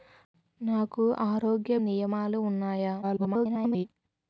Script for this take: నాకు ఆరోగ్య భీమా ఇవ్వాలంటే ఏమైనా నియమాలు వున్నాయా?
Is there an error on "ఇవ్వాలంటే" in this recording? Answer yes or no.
yes